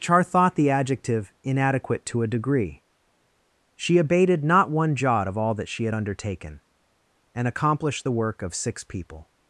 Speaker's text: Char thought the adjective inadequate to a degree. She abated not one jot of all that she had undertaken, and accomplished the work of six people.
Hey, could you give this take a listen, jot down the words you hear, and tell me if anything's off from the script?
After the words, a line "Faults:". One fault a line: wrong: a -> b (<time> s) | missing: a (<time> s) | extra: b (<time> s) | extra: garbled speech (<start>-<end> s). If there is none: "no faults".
Char thought the adjective inadequate to a degree. She abated not one jot of all that she had undertaken, and accomplished the work of six people.
Faults:
no faults